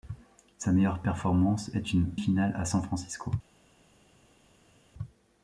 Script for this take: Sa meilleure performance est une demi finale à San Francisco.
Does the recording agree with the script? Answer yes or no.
no